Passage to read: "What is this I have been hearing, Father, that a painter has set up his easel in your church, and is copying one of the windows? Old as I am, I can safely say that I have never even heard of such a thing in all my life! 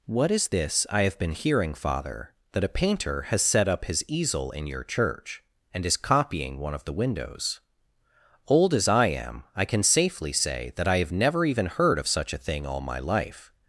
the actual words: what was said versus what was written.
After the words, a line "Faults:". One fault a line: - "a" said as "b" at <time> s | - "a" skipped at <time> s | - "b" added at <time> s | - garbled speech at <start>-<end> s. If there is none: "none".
"What is this I have been hearing, Father, that a painter has set up his easel in your church, and is copying one of the windows? Old as I am, I can safely say that I have never even heard of such a thing all my life!
Faults:
- "in" skipped at 12.7 s